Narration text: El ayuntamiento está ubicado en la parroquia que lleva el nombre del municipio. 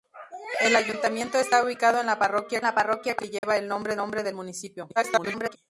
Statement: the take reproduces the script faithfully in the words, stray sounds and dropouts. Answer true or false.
false